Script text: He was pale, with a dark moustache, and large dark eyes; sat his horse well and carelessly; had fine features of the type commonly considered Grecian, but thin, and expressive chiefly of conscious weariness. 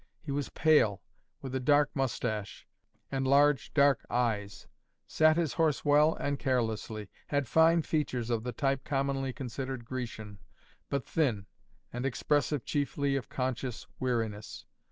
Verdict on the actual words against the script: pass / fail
pass